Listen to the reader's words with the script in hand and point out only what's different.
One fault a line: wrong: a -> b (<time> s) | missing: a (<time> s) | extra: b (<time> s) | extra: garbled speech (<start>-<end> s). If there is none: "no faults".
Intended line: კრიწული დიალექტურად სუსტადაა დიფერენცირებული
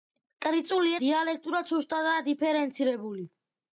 no faults